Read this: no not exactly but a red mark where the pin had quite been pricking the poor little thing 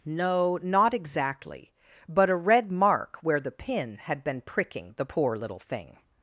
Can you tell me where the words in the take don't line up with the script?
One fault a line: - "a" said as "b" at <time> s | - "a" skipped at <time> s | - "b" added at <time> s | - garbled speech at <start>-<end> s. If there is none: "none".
- "quite" skipped at 4.2 s